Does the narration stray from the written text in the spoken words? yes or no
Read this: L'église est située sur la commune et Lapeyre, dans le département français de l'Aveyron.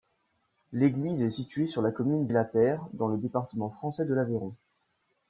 no